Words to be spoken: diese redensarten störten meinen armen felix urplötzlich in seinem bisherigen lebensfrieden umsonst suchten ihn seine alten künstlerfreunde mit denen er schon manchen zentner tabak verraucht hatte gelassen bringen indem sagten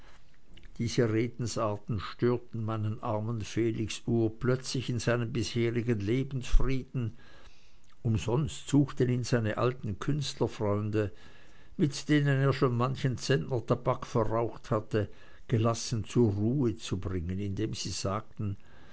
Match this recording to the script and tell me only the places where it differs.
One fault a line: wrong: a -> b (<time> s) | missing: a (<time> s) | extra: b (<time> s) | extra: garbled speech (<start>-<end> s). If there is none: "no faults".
extra: zur ruhe zu (16.1 s)
extra: sie (17.7 s)